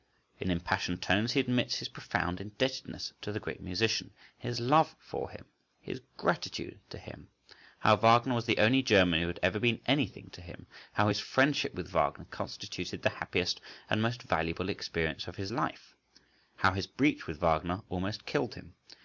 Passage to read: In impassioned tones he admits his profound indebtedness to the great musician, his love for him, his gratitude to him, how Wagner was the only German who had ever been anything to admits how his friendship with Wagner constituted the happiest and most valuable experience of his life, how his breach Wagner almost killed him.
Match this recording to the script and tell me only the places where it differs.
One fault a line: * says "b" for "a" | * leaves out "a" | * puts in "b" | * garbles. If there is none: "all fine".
* says "him" for "admits"
* puts in "with"